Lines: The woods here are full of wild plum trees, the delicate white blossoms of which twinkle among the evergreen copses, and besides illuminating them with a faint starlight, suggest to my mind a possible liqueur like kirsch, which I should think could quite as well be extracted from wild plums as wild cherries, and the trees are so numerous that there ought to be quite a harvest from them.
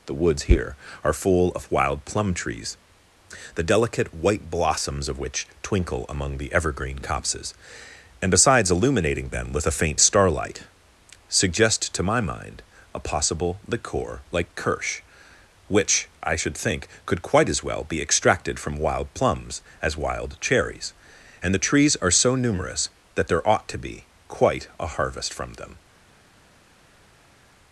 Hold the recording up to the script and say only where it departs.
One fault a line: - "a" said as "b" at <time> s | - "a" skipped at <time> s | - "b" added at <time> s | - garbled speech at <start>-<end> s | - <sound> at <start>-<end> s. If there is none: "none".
none